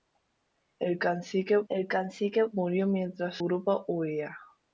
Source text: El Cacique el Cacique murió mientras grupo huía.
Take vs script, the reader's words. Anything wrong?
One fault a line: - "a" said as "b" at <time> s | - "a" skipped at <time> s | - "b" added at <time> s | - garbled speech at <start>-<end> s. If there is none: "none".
none